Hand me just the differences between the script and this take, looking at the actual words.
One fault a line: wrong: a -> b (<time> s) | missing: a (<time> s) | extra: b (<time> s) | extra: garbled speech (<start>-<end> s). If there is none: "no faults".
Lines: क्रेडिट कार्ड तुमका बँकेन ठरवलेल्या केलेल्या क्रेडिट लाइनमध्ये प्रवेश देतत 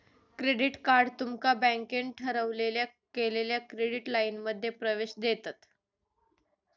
no faults